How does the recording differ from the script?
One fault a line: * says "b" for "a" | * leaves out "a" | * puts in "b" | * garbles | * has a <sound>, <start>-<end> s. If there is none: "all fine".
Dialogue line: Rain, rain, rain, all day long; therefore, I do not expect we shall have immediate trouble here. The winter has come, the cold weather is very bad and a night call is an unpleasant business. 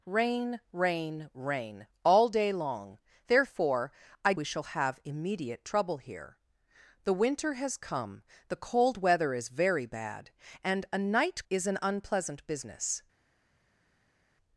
* leaves out "do not expect"
* leaves out "call"